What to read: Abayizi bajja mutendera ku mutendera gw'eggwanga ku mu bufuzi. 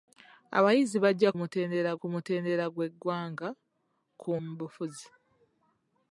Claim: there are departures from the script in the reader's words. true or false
false